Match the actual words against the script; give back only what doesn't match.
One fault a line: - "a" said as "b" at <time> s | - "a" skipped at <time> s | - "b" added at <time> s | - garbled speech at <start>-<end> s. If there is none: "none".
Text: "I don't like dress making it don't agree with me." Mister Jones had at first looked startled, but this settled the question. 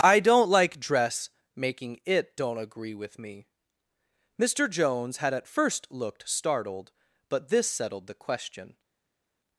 none